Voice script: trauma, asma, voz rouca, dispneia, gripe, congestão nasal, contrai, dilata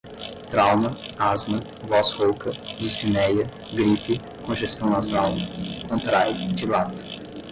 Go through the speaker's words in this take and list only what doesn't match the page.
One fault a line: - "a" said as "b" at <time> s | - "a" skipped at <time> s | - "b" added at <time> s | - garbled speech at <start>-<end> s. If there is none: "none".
none